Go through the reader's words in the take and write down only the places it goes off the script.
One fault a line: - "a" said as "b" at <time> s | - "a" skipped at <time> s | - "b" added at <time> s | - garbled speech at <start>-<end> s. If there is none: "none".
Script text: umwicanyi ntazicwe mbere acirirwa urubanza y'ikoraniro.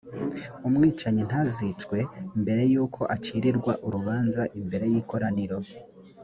- "yuko" added at 2.7 s
- "imbere" added at 4.6 s